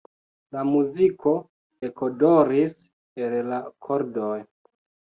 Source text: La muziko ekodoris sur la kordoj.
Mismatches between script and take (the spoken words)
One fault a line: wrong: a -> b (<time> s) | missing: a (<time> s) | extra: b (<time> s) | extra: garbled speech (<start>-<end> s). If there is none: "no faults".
wrong: sur -> el (3.3 s)